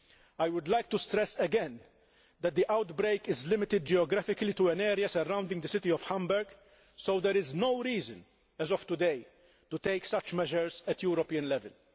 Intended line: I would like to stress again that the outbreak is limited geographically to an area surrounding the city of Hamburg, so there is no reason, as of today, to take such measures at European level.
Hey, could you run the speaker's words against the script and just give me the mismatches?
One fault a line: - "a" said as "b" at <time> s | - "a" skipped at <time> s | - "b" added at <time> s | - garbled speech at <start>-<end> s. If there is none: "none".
none